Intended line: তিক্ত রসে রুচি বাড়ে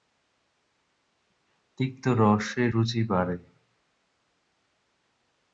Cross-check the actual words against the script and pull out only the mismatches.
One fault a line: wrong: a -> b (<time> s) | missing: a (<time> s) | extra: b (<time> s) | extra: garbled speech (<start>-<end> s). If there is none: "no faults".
no faults